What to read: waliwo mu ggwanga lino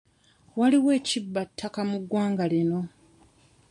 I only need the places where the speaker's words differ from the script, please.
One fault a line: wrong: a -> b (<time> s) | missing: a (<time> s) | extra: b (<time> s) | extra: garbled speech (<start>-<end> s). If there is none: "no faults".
extra: ekibba ttaka (1.0 s)